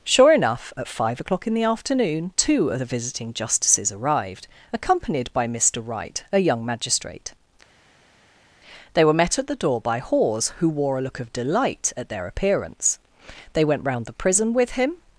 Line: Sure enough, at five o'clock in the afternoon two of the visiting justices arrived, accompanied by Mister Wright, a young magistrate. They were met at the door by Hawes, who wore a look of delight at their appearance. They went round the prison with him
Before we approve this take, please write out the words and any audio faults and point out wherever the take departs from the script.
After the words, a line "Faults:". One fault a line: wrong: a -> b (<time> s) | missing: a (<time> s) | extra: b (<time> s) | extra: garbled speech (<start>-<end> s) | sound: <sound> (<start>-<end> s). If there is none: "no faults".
Sure enough, at five o'clock in the afternoon two of the visiting justices arrived, accompanied by Mister Wright, a young magistrate. They were met at the door by Hawes, who wore a look of delight at their appearance. They went round the prison with him
Faults:
no faults